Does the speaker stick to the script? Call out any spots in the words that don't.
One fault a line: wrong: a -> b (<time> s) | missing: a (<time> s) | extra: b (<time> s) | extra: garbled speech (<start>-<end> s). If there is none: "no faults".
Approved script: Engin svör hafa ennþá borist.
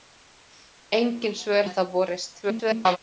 missing: hafa (1.6 s)
extra: garbled speech (2.4-3.0 s)